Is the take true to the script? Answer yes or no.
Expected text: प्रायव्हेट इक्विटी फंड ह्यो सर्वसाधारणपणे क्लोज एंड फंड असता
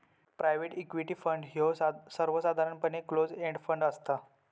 yes